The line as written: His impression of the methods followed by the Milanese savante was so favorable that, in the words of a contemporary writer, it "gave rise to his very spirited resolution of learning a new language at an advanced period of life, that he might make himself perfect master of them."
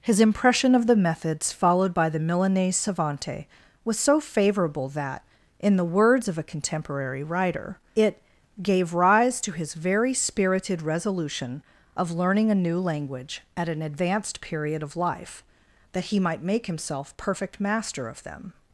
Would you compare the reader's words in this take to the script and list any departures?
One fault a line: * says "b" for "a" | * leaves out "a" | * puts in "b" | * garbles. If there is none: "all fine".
all fine